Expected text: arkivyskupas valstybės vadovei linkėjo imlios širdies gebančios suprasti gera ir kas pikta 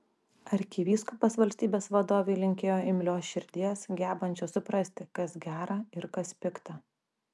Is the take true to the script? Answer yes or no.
no